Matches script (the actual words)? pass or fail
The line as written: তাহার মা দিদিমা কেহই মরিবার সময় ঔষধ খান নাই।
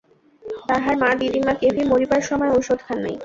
pass